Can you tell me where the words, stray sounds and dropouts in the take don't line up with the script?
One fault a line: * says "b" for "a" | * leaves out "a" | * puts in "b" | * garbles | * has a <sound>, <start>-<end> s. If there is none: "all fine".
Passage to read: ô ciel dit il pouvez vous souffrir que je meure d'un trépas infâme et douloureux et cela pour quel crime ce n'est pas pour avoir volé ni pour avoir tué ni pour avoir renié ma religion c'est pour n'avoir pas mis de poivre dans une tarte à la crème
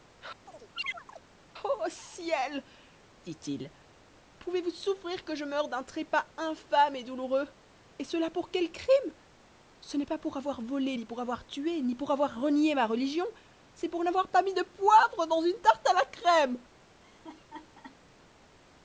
* has a chirp, 0.5-1.2 s
* has a laugh, 17.0-18.0 s